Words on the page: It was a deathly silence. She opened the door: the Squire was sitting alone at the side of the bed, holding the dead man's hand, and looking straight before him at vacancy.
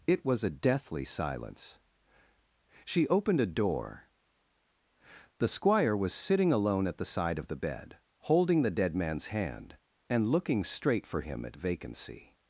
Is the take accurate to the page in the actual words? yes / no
no